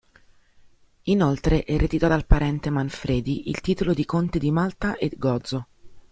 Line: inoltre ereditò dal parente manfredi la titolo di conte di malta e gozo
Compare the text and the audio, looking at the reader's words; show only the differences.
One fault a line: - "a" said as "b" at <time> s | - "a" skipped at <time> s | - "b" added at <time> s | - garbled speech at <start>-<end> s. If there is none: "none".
- "la" said as "il" at 3.5 s